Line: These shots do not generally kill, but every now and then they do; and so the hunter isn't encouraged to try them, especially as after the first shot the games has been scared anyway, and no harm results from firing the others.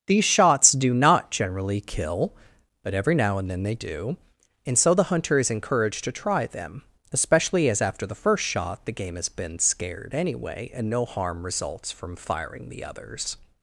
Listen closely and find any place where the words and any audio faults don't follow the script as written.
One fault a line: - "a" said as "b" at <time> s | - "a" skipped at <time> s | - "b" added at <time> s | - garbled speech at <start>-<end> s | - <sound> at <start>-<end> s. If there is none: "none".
- "isn't" said as "is" at 5.4 s
- "games" said as "game" at 8.9 s